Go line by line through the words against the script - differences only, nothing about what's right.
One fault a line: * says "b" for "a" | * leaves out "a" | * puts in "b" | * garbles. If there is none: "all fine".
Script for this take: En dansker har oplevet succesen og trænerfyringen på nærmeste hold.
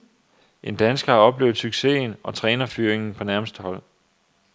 all fine